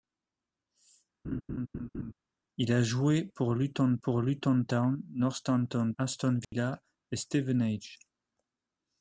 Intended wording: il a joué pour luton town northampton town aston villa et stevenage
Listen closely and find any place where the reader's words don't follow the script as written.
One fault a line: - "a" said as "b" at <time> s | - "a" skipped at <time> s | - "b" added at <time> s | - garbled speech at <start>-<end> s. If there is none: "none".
- "pour luton" added at 4.0 s
- "town" skipped at 5.9 s